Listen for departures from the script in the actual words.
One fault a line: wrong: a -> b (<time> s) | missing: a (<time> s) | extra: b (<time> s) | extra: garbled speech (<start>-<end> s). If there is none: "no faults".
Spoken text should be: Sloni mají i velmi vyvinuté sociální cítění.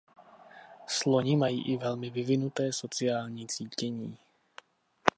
no faults